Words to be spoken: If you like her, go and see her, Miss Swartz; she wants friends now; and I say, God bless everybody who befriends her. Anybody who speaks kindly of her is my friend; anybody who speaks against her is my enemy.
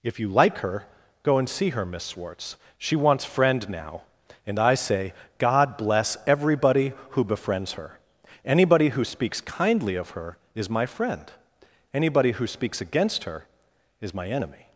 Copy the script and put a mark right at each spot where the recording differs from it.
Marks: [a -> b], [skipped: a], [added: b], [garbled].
If you like her, go and see her, Miss Swartz; she wants [friends -> friend] now; and I say, God bless everybody who befriends her. Anybody who speaks kindly of her is my friend; anybody who speaks against her is my enemy.